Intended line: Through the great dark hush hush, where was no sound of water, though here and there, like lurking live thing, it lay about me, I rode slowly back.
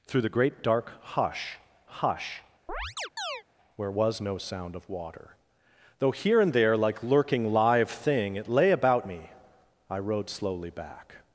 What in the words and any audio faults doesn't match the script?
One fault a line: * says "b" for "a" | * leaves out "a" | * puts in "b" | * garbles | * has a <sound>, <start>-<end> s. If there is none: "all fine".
* has a chirp, 2.7-3.4 s